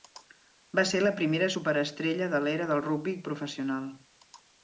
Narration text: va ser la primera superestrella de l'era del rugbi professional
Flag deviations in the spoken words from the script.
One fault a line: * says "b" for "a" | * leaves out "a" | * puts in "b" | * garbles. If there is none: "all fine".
all fine